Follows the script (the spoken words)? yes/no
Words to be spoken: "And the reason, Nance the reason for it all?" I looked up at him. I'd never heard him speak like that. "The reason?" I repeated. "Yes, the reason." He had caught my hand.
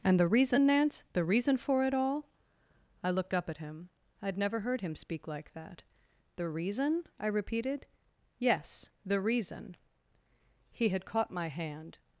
yes